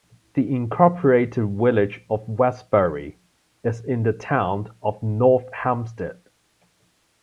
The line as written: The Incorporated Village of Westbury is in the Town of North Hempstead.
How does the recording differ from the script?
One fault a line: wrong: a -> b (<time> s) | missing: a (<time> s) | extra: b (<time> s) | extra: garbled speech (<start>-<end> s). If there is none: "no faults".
no faults